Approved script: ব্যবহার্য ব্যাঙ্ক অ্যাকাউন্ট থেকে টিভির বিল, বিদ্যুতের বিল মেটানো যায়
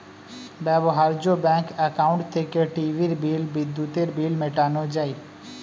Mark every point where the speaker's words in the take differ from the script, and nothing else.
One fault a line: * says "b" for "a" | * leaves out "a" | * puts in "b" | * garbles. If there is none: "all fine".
all fine